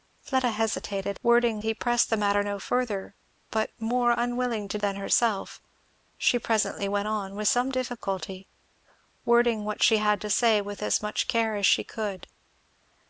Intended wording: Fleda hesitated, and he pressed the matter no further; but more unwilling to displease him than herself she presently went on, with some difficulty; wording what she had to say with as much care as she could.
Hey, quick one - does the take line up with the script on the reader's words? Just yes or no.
no